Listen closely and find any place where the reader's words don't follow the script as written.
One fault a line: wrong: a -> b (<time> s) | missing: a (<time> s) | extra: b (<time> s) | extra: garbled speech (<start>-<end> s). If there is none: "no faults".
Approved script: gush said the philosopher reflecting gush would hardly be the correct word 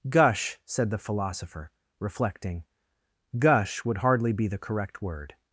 no faults